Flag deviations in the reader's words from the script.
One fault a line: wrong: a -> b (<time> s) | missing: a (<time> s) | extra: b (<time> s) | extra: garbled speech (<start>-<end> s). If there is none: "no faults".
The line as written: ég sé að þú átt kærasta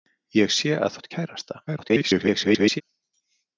missing: þú (0.9 s)
extra: garbled speech (1.7-2.8 s)